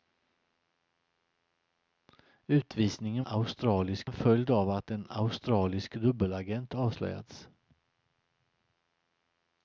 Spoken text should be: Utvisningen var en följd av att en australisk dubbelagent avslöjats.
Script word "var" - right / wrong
wrong